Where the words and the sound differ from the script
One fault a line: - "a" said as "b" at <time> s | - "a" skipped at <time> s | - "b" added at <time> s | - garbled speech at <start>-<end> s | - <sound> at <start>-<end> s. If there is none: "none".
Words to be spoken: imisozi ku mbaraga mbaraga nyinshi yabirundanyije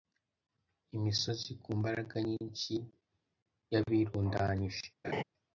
- "mbaraga" skipped at 2.1 s
- laugh at 5.0-5.2 s